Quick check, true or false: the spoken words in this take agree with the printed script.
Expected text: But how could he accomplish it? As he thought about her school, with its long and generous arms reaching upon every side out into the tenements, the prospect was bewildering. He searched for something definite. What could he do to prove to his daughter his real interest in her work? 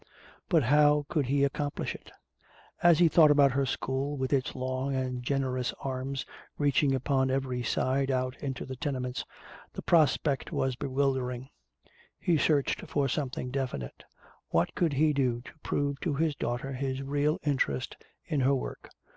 true